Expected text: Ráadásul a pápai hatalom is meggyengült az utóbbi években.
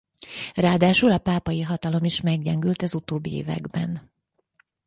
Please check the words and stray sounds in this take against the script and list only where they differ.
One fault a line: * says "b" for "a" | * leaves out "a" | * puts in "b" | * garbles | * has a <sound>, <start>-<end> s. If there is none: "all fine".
all fine